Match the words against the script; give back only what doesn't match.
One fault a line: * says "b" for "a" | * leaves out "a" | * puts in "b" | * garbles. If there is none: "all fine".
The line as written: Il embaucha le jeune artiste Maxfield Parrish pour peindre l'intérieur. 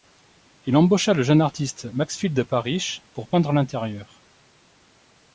all fine